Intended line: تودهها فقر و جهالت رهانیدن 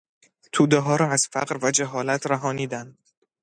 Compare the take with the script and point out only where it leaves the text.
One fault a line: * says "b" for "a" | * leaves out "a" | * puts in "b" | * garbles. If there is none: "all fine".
* puts in "را از"